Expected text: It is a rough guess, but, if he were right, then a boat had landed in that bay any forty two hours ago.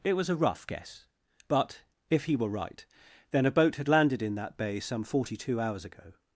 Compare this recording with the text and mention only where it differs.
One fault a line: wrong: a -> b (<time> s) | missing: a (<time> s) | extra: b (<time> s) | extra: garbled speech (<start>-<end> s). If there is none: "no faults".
wrong: is -> was (0.1 s)
wrong: any -> some (4.8 s)